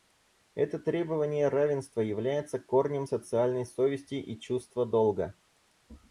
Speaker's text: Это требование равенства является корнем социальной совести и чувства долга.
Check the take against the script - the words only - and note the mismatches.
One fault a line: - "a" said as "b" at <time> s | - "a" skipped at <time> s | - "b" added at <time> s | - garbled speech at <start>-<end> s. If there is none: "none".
none